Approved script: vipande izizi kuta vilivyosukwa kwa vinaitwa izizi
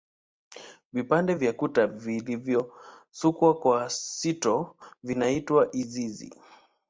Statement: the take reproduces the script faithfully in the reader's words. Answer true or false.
false